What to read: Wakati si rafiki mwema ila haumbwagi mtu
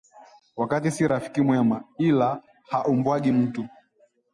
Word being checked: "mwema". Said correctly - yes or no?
yes